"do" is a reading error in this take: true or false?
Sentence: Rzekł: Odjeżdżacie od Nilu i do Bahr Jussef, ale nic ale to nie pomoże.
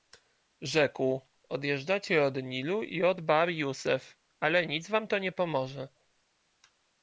true